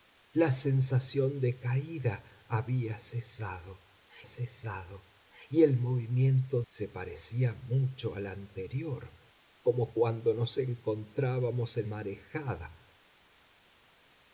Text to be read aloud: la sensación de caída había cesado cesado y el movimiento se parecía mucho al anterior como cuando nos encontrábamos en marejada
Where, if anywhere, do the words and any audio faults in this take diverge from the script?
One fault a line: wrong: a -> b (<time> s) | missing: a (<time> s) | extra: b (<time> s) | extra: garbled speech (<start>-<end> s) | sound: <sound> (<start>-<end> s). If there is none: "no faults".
no faults